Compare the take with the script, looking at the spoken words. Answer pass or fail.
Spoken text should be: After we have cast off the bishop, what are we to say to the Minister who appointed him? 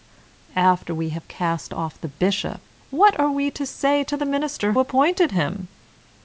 fail